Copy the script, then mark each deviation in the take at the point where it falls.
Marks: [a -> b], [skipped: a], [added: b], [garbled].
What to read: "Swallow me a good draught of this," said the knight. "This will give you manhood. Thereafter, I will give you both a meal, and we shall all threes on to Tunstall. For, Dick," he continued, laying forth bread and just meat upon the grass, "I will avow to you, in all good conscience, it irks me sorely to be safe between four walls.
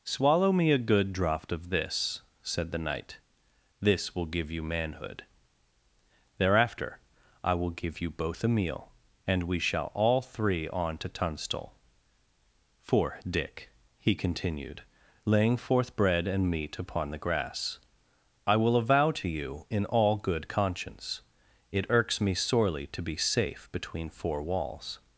"Swallow me a good draught of this," said the knight. "This will give you manhood. Thereafter, I will give you both a meal, and we shall all [threes -> three] on to Tunstall. For, Dick," he continued, laying forth bread and [skipped: just] meat upon the grass, "I will avow to you, in all good conscience, it irks me sorely to be safe between four walls.